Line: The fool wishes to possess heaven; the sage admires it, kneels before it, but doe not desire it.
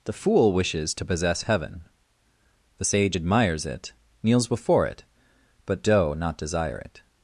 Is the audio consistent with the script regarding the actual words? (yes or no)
yes